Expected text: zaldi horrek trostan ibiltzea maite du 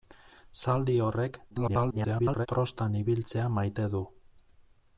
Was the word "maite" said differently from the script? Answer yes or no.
no